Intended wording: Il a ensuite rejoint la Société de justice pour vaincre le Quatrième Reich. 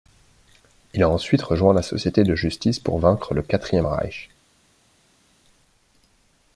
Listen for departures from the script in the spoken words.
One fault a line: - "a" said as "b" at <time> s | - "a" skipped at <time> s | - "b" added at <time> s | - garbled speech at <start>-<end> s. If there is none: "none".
none